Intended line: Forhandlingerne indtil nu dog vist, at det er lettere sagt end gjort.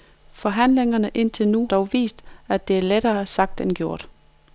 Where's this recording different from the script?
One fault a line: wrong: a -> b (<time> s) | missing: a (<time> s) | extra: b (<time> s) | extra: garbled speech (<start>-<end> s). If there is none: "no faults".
no faults